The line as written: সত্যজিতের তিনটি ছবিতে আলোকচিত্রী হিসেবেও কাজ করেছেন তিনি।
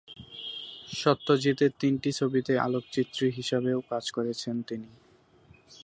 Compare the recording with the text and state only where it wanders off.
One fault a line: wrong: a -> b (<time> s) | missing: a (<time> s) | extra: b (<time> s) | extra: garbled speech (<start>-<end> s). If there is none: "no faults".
no faults